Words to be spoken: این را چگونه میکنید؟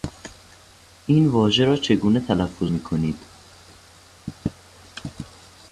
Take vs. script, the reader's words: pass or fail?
fail